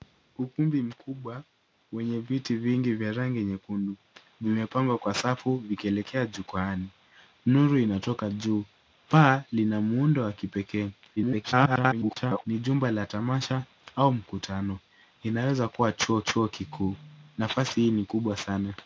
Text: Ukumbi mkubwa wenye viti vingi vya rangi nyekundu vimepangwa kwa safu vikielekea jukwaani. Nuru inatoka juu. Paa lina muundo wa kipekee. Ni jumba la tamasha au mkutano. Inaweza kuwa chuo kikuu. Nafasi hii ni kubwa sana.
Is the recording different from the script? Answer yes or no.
yes